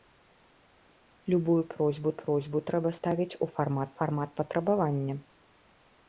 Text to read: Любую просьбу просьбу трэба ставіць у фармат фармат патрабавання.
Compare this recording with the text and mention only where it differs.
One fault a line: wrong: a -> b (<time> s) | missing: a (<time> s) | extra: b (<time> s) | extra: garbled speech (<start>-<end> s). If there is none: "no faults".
no faults